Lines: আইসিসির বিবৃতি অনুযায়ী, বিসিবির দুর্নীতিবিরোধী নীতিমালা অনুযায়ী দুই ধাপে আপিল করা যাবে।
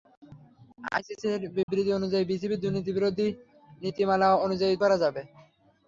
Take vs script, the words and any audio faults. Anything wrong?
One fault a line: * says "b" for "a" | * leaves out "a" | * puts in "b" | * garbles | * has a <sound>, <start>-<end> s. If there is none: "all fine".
* has a dropout, 1.6-1.7 s
* leaves out "দুই ধাপে আপিল"